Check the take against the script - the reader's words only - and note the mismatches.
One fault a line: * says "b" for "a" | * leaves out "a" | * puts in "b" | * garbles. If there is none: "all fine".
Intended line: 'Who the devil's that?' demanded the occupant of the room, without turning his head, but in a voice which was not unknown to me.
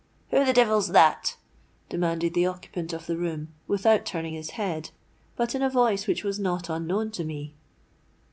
all fine